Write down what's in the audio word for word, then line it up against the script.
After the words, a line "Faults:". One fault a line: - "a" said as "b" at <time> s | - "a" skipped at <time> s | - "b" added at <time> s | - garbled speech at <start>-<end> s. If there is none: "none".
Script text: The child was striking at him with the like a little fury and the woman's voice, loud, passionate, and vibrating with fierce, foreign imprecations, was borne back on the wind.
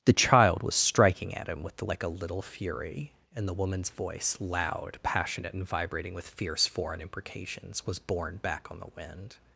The child was striking at him with the like a little fury and the woman's voice, loud, passionate, and vibrating with fierce, foreign imprecations, was borne back on the wind.
Faults:
none